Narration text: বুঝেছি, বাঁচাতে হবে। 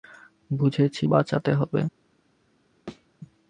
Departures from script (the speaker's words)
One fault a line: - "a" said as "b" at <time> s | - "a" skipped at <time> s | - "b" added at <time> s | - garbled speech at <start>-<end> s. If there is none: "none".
none